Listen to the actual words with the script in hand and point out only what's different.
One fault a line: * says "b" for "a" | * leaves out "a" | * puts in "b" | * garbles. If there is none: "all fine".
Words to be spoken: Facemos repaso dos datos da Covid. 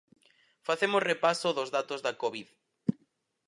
all fine